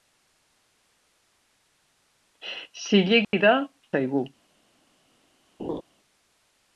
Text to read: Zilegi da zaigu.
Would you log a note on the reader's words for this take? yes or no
no